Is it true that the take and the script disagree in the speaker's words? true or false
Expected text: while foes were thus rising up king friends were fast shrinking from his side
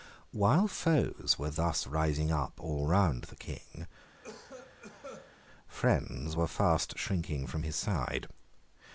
true